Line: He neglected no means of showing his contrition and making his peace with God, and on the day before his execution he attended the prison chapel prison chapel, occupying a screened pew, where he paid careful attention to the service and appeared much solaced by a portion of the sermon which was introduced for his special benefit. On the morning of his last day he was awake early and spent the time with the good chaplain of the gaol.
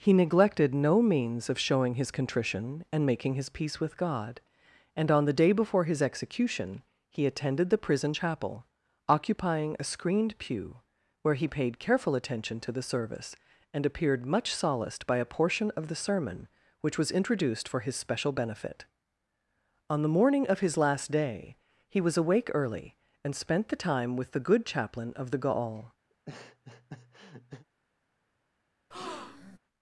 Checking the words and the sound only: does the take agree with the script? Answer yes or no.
no